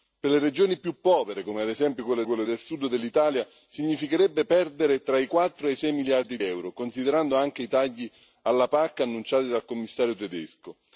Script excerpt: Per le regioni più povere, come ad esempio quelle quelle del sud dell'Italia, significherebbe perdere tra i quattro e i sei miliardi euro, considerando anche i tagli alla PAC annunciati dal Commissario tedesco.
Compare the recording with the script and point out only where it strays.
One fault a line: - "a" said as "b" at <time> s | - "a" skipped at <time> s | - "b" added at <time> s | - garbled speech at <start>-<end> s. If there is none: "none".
none